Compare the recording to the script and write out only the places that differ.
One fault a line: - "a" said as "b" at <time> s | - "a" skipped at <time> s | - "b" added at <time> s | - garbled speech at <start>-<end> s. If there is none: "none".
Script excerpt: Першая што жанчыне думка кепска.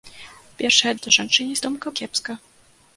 none